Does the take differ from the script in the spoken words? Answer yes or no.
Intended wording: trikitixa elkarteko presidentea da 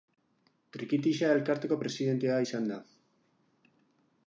yes